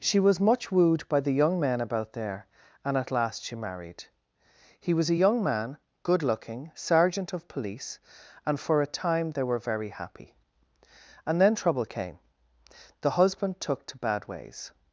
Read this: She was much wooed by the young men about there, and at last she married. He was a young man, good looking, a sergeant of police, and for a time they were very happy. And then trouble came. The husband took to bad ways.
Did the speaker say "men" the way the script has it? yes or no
yes